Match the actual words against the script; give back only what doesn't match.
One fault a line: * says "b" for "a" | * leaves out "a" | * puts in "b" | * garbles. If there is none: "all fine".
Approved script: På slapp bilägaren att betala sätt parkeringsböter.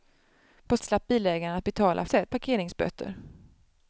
all fine